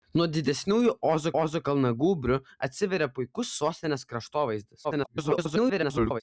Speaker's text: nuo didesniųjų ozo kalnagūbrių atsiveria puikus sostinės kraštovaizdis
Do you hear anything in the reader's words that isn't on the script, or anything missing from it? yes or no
yes